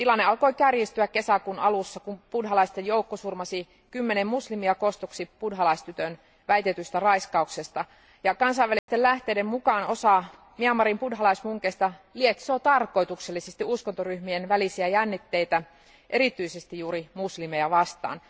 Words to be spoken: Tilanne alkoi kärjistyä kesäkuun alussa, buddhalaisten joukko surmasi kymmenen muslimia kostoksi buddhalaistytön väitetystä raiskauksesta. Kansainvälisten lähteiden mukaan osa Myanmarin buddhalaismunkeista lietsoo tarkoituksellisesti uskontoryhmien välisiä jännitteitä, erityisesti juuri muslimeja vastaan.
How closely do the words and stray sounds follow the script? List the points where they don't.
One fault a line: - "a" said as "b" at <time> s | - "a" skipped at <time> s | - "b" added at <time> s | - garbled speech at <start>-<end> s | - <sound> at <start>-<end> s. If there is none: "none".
- "kun" added at 2.0 s
- dropout at 8.8-8.9 s